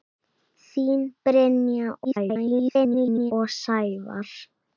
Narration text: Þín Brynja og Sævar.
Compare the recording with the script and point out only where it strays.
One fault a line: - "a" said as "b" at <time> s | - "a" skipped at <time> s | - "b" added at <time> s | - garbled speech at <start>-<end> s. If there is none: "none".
- garbled speech at 2.0-3.3 s